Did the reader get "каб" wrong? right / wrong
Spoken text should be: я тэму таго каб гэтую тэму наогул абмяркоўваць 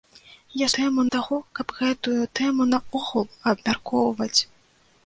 right